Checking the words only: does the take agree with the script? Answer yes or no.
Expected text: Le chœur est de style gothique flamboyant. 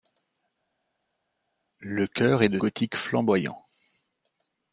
no